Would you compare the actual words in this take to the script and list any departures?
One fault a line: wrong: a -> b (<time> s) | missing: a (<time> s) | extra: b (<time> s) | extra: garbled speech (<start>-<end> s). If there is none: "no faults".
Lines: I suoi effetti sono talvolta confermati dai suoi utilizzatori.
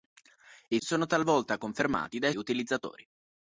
missing: suoi effetti (0.8 s)
missing: suoi (2.3 s)